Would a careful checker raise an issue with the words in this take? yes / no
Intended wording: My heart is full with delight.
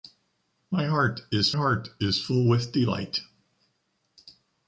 yes